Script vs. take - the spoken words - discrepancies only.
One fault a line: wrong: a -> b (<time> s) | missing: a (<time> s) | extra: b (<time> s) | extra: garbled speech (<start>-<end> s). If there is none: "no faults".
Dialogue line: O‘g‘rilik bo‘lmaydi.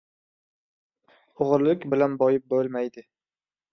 extra: bilan boyib (2.0 s)